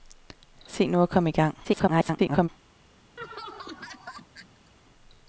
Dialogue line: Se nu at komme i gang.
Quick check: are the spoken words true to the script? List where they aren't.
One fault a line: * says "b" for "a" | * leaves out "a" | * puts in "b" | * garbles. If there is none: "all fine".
* garbles